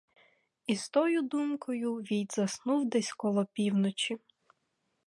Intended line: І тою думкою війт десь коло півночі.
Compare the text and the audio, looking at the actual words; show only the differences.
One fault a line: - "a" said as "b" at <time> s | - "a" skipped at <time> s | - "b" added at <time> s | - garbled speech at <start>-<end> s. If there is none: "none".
- "з" added at 0.8 s
- "заснув" added at 2.4 s